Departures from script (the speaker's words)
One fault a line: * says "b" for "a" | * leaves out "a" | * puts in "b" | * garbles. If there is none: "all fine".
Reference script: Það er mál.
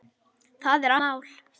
all fine